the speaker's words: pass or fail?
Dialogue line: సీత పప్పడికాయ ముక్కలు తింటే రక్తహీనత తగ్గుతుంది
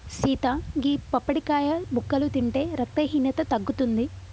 fail